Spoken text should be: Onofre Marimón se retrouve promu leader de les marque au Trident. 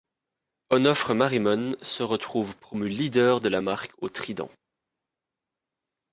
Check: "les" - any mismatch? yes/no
yes